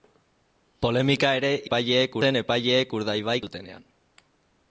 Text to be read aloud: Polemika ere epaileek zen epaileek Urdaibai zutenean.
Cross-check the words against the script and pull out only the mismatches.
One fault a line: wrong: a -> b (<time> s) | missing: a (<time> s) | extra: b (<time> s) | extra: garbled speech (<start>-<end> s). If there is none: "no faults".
no faults